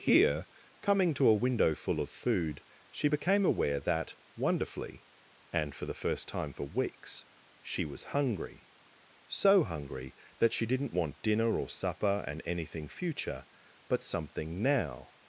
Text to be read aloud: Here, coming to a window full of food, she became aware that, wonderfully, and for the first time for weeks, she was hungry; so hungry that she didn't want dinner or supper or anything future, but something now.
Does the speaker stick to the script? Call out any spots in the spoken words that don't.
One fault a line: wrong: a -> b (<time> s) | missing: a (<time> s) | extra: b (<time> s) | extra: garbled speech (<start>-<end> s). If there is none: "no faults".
wrong: or -> and (12.3 s)